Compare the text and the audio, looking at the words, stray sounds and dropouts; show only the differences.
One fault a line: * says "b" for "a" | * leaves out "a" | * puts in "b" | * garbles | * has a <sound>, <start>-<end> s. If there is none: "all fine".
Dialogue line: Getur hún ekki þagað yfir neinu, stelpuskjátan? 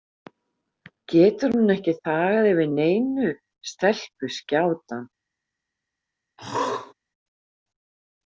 * has a throat clearing, 6.4-6.9 s